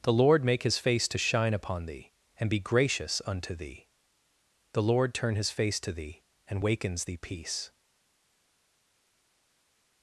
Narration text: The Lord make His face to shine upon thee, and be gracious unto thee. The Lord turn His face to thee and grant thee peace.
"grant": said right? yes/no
no